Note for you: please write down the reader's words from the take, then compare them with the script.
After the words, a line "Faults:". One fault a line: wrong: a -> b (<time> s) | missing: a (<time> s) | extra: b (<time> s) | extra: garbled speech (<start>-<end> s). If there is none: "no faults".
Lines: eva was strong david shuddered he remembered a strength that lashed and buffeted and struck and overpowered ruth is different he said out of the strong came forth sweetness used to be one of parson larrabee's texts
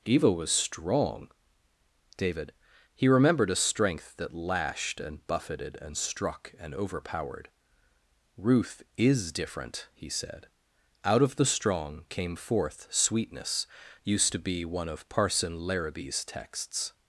eva was strong david he remembered a strength that lashed and buffeted and struck and overpowered ruth is different he said out of the strong came forth sweetness used to be one of parson larrabee's texts
Faults:
missing: shuddered (2.5 s)